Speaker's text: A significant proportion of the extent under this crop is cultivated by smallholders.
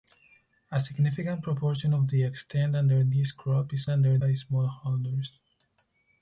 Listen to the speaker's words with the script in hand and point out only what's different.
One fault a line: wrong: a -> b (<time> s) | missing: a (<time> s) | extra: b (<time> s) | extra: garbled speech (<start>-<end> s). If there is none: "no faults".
wrong: cultivated -> under (3.9 s)